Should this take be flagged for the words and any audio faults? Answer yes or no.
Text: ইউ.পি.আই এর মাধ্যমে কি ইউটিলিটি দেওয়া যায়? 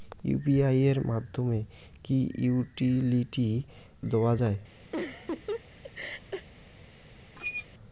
yes